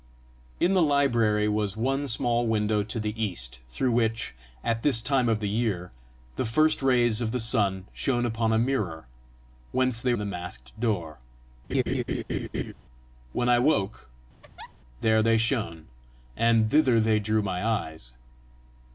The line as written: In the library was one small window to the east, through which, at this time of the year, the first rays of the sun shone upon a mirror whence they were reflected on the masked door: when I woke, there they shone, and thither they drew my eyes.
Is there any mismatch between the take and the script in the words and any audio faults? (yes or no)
yes